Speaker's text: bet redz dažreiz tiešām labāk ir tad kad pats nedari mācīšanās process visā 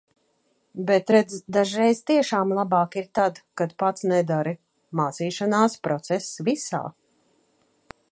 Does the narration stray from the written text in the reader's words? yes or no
no